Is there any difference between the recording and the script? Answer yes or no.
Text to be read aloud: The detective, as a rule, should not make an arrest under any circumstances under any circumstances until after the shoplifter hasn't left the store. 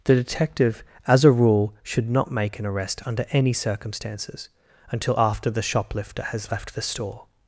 yes